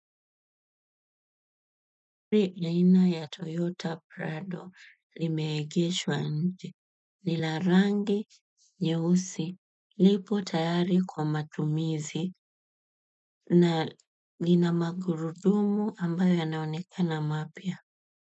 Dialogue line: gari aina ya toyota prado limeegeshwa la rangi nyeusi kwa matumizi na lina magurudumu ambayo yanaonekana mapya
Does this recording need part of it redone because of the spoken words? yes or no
yes